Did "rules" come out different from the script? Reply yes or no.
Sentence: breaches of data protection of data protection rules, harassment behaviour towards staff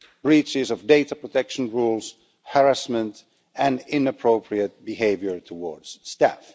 yes